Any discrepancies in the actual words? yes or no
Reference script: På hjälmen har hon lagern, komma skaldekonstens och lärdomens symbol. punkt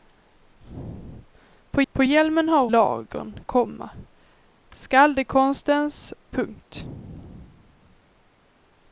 yes